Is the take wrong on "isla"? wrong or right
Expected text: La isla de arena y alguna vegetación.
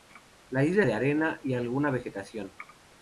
right